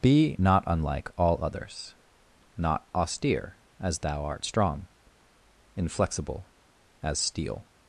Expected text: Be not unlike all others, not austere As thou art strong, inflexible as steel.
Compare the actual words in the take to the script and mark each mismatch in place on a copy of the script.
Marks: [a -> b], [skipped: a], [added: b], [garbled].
Be not unlike all others, not austere As thou art strong, inflexible as steel.